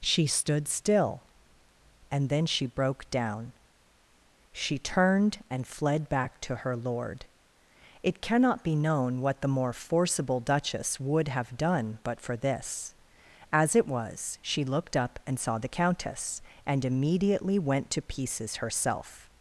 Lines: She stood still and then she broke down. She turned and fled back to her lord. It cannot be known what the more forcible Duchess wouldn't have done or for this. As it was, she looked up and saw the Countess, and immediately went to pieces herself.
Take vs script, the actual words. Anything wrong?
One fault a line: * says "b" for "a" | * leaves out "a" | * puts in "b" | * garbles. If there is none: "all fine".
* says "would" for "wouldn't"
* says "but" for "or"